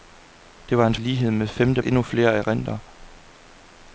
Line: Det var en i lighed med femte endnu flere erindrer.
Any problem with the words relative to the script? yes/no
no